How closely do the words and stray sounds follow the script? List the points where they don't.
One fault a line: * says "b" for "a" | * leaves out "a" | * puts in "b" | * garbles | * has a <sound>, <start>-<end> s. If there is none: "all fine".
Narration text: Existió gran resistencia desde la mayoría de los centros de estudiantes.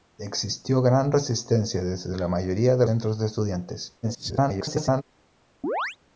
* leaves out "los"
* garbles
* has a chirp, 5.6-6.0 s